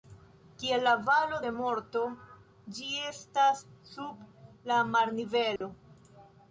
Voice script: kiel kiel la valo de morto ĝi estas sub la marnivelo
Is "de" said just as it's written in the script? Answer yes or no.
yes